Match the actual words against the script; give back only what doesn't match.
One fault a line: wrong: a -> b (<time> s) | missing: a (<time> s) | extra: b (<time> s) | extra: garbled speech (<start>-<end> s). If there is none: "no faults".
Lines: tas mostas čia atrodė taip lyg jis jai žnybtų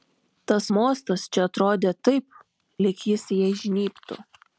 no faults